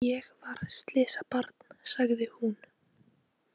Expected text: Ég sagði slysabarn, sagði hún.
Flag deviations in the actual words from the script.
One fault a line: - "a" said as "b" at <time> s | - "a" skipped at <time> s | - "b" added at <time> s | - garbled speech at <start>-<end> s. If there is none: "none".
- "sagði" said as "var" at 0.5 s